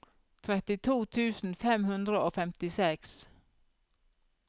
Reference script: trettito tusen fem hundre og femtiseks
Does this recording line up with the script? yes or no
yes